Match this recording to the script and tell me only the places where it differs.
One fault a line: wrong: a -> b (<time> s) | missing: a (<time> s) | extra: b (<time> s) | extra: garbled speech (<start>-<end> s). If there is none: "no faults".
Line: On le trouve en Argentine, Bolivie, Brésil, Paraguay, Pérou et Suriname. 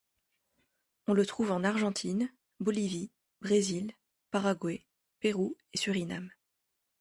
no faults